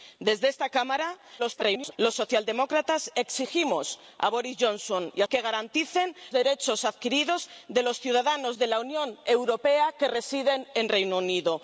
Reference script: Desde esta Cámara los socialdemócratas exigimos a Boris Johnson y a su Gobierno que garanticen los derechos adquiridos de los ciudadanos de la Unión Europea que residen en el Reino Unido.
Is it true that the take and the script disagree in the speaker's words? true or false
true